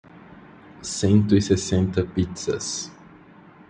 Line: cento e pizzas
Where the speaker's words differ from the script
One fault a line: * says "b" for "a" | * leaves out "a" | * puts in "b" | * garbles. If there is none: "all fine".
* puts in "sessenta"